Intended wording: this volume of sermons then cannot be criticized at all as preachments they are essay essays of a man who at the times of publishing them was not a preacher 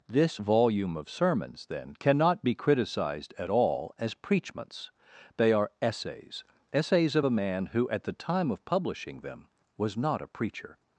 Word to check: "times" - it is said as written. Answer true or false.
false